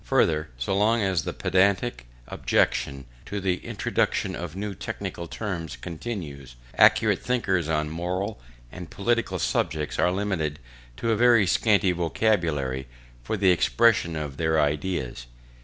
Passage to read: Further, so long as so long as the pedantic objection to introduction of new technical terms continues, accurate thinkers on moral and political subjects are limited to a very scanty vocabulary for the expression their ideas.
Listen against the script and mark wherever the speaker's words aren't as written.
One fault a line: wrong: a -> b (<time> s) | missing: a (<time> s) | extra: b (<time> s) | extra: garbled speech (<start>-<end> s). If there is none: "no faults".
missing: so long as (1.2 s)
extra: the (3.4 s)
extra: of (14.2 s)